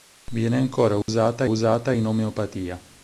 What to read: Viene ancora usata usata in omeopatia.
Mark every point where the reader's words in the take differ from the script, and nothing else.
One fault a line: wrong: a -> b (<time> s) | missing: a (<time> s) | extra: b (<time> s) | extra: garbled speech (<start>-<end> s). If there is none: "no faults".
no faults